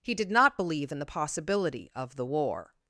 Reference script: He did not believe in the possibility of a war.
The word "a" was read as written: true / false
false